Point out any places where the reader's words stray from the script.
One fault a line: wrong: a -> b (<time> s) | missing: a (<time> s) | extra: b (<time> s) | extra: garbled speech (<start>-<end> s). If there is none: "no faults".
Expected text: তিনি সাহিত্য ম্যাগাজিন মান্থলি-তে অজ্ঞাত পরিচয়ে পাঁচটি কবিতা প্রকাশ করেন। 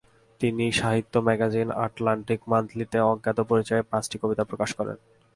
extra: আটলান্টিক (1.9 s)